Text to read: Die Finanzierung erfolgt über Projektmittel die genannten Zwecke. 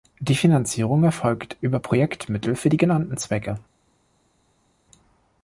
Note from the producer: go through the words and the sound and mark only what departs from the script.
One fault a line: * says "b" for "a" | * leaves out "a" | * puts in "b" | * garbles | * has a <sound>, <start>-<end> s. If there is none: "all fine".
* puts in "für"